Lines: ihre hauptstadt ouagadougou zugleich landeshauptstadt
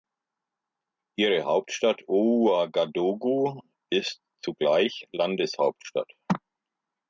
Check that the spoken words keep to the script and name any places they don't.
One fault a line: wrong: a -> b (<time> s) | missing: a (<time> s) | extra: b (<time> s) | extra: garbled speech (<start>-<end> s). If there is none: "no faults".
extra: ist (3.9 s)